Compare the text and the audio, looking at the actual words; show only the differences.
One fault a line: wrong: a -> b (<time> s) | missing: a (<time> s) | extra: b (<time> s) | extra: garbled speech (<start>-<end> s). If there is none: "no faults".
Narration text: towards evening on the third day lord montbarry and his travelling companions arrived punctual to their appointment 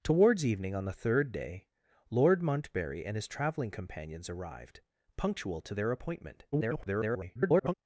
extra: garbled speech (6.5-7.7 s)